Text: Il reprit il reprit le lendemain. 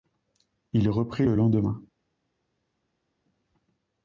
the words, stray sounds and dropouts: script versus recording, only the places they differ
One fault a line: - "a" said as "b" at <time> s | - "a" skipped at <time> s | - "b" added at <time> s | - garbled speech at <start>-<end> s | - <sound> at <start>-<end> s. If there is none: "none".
- "il reprit" skipped at 1.3 s